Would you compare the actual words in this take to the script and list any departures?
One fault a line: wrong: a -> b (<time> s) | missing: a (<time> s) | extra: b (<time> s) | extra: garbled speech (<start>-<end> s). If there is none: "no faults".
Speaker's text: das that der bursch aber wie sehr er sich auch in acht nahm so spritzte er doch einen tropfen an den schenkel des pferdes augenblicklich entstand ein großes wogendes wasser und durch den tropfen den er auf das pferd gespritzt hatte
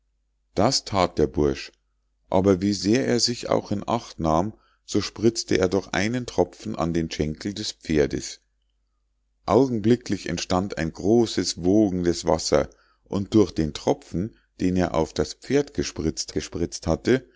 extra: gespritzt (16.3 s)